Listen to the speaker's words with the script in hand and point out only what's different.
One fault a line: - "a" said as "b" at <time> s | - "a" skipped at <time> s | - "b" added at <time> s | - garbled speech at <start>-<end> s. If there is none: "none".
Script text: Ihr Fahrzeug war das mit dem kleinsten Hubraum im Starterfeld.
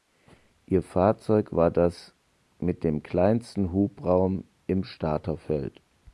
none